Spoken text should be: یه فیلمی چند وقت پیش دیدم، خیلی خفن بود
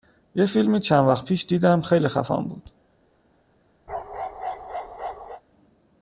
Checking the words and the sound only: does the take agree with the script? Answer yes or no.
no